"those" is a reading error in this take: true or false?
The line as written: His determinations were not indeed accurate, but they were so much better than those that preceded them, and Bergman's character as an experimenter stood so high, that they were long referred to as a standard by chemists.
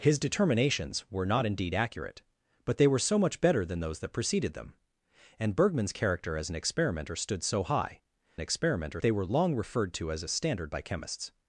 false